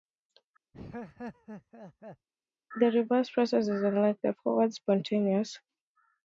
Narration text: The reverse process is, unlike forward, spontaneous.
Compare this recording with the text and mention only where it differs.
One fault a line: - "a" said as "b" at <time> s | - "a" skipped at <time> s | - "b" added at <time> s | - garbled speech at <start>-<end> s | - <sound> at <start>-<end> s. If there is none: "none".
- laugh at 0.7-2.3 s
- "the" added at 4.2 s